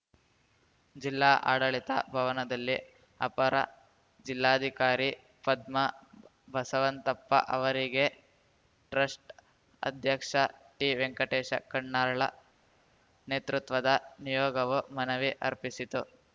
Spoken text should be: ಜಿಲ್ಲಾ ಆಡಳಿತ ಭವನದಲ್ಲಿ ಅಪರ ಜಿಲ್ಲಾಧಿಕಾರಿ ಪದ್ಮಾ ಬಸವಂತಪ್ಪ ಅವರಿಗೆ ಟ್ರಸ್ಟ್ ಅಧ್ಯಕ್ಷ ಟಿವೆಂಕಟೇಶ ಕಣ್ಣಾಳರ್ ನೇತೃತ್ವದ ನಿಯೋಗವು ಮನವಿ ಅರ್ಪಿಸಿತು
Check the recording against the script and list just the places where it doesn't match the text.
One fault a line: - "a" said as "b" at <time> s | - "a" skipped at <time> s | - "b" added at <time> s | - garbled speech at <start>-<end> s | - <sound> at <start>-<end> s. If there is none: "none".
none